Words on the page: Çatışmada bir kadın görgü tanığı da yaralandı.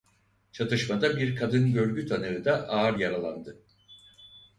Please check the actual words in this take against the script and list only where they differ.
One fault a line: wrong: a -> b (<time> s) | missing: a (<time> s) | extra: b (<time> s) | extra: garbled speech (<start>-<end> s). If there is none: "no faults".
extra: ağır (2.7 s)